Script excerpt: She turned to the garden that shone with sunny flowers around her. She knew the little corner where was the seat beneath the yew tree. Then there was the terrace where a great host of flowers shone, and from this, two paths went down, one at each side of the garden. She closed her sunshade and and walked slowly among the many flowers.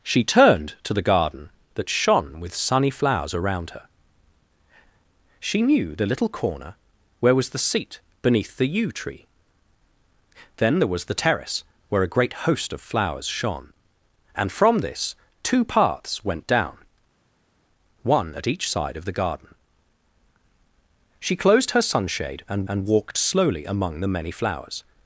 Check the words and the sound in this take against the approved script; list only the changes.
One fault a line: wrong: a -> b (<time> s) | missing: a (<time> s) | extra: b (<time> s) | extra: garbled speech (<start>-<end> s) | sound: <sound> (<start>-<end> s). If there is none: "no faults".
no faults